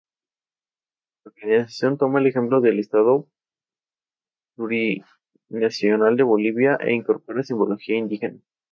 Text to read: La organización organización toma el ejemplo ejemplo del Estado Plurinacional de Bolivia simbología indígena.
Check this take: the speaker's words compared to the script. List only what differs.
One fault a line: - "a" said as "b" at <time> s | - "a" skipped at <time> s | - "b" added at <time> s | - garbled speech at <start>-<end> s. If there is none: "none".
- "organización" skipped at 2.0 s
- "ejemplo" skipped at 2.6 s
- "e incorpora" added at 6.8 s